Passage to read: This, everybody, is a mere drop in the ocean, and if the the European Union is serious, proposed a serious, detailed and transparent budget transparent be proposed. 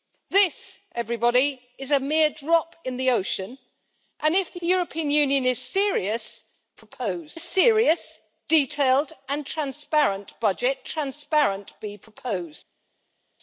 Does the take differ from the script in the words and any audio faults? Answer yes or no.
no